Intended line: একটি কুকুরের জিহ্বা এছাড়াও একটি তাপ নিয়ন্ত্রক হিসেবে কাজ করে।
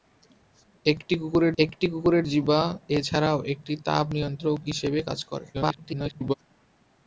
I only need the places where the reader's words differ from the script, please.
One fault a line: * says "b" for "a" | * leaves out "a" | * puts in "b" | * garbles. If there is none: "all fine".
* puts in "একটি কুকুরের"
* garbles